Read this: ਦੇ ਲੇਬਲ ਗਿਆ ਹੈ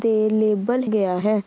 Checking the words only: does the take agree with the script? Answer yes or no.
yes